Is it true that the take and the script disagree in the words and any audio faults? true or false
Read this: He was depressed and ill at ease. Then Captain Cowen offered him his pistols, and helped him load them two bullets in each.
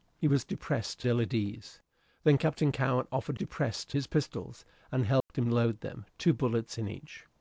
true